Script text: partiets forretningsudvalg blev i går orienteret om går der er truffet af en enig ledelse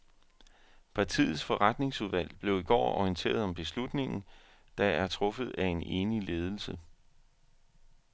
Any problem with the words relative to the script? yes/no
yes